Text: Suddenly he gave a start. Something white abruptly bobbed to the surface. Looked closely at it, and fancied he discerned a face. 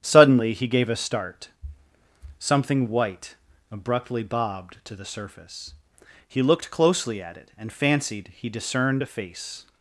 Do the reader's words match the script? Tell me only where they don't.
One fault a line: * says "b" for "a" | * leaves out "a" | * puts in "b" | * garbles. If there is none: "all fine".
* puts in "He"